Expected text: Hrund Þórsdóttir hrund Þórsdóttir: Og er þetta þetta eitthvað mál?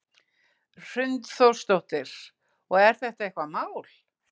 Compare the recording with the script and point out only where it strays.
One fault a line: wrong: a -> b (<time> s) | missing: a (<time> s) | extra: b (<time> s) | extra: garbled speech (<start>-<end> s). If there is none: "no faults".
missing: hrund Þórsdóttir (2.2 s)
missing: þetta (3.3 s)